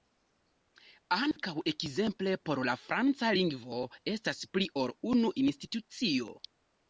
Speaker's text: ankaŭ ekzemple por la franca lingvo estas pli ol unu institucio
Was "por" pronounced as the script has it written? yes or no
yes